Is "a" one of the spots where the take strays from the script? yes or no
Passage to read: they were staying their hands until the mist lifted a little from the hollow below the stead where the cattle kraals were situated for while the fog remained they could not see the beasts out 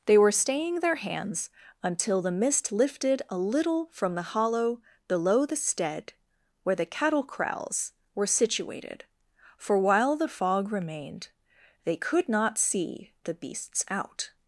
no